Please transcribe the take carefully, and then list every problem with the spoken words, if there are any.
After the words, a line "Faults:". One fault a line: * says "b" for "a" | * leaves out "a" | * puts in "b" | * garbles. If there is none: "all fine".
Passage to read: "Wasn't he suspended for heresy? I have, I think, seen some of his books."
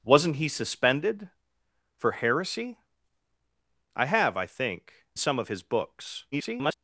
"Wasn't he suspended for heresy? I have, I think, some of his books." [garbled]
Faults:
* leaves out "seen"
* garbles